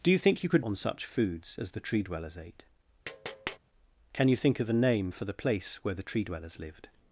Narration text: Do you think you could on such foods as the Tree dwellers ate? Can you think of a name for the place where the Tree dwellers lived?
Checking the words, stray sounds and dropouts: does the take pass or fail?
fail